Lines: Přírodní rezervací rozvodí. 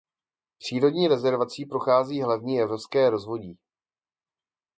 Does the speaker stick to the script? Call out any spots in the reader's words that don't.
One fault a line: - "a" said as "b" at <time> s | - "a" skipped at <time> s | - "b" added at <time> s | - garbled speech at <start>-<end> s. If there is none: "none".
- "prochází hlavní evropské" added at 1.6 s